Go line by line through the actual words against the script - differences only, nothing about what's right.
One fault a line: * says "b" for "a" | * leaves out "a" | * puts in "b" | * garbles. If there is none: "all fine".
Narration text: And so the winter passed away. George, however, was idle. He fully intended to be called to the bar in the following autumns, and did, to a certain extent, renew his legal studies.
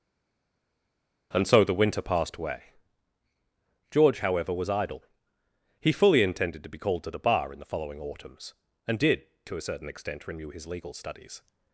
all fine